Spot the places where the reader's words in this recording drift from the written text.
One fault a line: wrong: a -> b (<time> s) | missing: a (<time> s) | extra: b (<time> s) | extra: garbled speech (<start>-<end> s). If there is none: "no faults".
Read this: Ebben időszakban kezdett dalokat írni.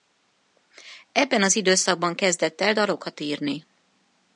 extra: az (1.4 s)
extra: el (2.6 s)